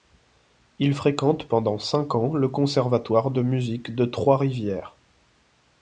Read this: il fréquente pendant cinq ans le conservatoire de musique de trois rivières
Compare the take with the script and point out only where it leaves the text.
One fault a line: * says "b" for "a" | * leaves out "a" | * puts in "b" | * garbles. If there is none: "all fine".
all fine